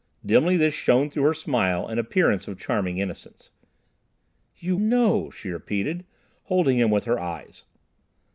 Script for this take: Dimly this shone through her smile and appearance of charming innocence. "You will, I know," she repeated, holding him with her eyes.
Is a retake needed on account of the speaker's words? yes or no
yes